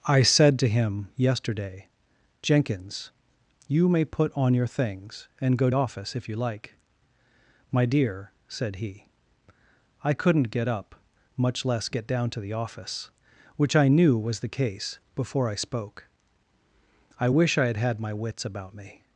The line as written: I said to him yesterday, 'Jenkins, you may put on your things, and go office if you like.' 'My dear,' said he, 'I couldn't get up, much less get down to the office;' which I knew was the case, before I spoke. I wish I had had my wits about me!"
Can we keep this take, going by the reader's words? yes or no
yes